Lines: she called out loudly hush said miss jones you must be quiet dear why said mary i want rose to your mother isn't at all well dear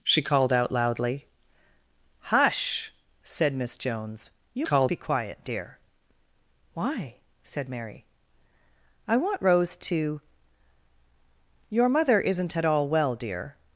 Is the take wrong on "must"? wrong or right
wrong